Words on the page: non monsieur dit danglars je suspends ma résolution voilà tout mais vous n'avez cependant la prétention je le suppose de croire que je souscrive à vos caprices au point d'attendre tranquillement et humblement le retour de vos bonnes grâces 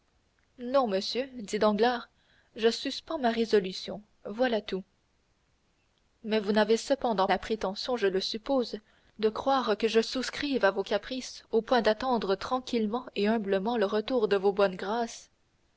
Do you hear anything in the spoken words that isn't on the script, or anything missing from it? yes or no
no